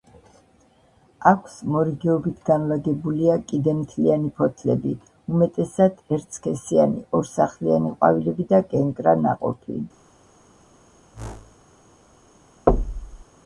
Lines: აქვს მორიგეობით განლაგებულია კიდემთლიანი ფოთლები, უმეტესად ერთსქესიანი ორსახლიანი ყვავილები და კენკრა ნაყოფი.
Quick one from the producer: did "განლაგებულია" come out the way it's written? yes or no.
yes